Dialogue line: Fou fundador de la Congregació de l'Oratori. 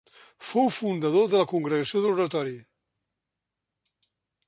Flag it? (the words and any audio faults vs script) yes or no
no